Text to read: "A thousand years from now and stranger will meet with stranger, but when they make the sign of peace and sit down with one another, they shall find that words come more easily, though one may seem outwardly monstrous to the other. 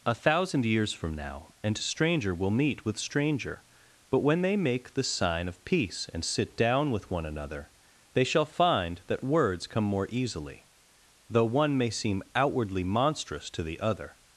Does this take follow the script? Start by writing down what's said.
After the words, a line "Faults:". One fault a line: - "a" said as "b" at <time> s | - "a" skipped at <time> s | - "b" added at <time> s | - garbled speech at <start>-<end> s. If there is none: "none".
"A thousand years from now and stranger will meet with stranger, but when they make the sign of peace and sit down with one another, they shall find that words come more easily, though one may seem outwardly monstrous to the other.
Faults:
none